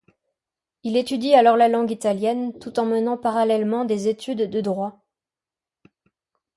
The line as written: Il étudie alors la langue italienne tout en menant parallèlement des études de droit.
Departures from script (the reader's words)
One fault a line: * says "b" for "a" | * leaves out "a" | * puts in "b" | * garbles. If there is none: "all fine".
all fine